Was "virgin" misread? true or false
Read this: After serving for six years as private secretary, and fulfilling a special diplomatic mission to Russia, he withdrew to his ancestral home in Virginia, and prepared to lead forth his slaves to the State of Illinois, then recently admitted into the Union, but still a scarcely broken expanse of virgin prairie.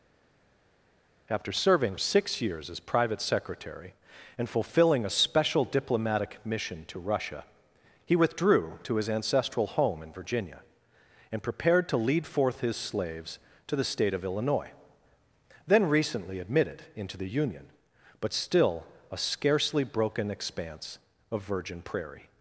false